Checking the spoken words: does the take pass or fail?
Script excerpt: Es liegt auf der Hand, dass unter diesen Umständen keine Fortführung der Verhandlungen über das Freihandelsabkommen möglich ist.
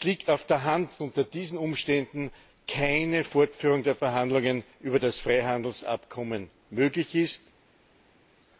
fail